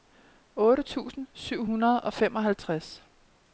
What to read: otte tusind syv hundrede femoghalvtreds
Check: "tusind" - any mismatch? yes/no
no